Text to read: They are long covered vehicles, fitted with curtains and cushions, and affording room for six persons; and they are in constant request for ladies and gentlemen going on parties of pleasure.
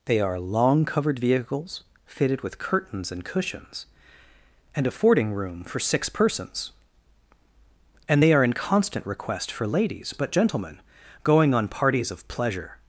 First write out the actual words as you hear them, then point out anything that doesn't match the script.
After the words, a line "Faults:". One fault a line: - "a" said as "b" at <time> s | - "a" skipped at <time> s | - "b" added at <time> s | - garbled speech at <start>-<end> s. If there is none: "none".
They are long covered vehicles, fitted with curtains and cushions, and affording room for six persons; and they are in constant request for ladies but gentlemen going on parties of pleasure.
Faults:
- "and" said as "but" at 10.1 s